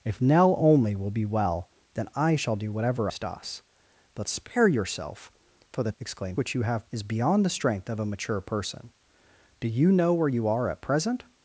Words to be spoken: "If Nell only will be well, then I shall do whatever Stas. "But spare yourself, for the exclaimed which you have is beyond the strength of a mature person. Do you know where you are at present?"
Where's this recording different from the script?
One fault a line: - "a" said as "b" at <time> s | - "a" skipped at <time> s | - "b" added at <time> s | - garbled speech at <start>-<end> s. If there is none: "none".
none